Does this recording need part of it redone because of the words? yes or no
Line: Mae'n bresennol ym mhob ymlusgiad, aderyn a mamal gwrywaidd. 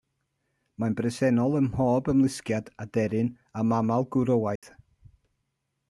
no